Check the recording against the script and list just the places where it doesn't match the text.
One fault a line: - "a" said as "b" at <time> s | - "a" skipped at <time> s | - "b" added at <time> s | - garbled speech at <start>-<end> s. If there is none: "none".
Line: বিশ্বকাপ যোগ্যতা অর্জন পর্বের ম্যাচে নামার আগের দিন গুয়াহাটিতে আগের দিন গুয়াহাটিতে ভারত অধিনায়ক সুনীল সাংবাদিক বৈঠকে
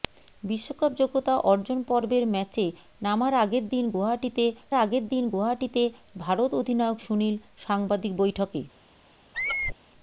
none